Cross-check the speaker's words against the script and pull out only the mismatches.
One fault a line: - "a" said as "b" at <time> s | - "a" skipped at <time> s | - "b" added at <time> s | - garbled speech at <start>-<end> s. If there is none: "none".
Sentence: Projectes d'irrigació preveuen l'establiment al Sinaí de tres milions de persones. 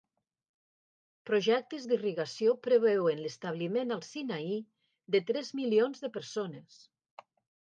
none